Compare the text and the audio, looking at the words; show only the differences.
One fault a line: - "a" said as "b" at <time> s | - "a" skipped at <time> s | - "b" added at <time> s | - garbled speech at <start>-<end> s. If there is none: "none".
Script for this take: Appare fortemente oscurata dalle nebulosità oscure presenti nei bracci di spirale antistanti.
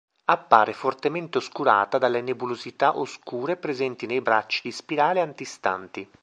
none